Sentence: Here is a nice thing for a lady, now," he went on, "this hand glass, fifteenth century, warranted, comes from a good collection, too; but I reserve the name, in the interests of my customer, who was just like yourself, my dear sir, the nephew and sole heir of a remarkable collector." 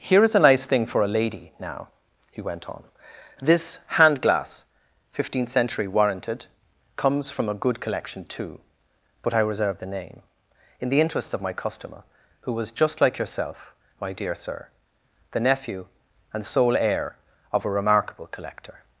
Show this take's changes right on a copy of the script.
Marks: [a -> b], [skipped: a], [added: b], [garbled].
Here is a nice thing for a lady, now," he went on, "this hand glass, fifteenth century, warranted, comes from a good collection, too; but I reserve the name, in the interests of my customer, who was just like yourself, my dear sir, the nephew and sole heir of a remarkable collector."